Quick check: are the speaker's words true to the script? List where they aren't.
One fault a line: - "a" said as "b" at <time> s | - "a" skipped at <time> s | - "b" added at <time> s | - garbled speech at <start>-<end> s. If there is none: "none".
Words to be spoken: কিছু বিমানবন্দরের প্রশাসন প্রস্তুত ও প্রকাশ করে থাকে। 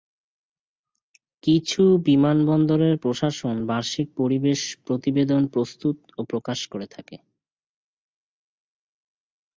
- "বার্ষিক পরিবেশ প্রতিবেদন" added at 3.7 s